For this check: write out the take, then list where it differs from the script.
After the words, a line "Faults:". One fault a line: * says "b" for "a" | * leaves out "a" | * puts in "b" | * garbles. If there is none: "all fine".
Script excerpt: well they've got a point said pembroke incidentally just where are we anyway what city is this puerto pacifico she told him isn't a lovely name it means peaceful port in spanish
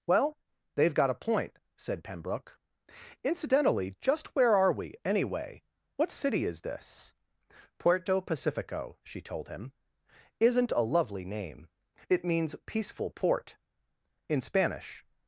well they've got a point said pembroke incidentally just where are we anyway what city is this puerto pacifico she told him isn't a lovely name it means peaceful port in spanish
Faults:
all fine